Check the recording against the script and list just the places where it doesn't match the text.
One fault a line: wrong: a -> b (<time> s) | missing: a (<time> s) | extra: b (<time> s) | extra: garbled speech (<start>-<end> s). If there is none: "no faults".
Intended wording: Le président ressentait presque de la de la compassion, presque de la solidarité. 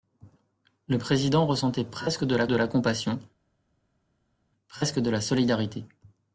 no faults